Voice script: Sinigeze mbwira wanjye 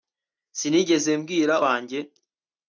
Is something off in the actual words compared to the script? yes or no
no